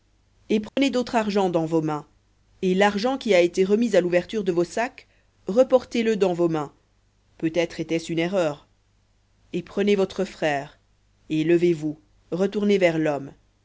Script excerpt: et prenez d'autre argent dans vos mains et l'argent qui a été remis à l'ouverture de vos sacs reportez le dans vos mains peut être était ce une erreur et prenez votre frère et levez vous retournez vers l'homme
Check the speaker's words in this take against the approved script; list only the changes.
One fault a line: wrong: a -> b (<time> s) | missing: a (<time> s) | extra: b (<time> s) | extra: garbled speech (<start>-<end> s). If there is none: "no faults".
no faults